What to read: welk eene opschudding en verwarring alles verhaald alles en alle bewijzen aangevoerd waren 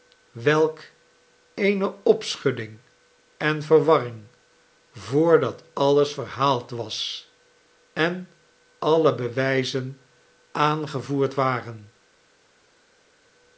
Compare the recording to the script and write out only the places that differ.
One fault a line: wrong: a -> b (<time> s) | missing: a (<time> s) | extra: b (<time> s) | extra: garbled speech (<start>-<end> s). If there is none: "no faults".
extra: voordat (4.9 s)
wrong: alles -> was (6.7 s)